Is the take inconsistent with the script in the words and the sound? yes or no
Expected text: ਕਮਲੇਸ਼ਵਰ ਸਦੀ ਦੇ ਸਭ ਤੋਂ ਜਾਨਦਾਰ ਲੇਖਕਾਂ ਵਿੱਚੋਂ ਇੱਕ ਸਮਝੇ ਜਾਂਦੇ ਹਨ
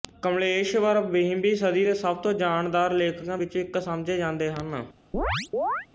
yes